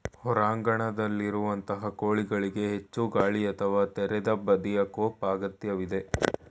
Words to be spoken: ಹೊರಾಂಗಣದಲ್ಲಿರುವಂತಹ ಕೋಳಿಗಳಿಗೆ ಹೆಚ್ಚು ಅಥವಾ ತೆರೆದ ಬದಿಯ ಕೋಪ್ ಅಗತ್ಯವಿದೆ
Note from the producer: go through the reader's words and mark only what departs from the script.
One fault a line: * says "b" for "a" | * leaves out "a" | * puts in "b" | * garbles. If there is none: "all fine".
* puts in "ಗಾಳಿ"